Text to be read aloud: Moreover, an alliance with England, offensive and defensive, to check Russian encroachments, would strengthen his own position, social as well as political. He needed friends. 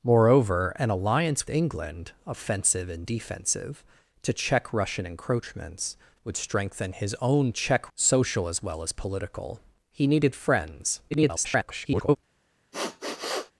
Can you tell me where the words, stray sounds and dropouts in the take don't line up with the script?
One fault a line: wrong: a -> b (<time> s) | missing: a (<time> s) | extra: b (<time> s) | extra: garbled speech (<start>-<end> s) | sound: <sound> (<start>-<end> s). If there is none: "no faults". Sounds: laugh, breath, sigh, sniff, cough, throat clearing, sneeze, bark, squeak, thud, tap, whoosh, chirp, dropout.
missing: with (1.5 s)
wrong: position -> check (7.5 s)
extra: garbled speech (11.1-12.2 s)
sound: sniff (12.7-13.5 s)